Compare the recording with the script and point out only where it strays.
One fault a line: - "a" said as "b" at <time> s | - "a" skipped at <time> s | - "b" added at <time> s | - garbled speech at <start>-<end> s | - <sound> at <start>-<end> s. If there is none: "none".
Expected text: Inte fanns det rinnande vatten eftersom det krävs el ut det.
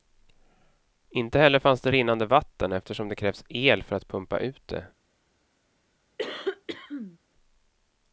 - "heller" added at 1.4 s
- "för att pumpa" added at 3.8 s
- cough at 6.2-7.2 s